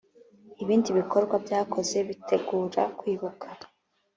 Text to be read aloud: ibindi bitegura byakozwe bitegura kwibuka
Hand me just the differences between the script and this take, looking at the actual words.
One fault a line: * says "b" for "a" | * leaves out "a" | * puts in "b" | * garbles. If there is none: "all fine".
* says "bikorwa" for "bitegura"